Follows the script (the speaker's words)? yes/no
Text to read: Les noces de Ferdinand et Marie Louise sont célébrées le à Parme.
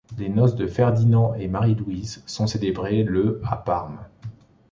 yes